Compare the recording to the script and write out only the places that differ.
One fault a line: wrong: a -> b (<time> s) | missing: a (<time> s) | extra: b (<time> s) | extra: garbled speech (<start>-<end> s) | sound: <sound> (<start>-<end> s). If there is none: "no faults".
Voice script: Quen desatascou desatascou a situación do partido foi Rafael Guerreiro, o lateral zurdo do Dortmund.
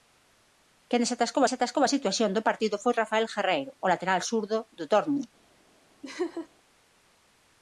sound: laugh (6.0-6.5 s)